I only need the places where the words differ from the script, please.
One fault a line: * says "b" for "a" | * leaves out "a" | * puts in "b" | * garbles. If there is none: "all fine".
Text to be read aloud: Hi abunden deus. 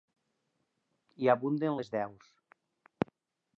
* puts in "les"